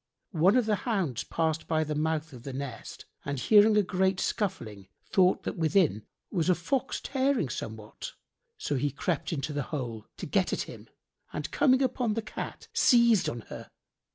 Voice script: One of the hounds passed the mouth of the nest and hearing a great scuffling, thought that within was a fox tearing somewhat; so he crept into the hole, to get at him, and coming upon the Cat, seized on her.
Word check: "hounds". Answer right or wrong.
right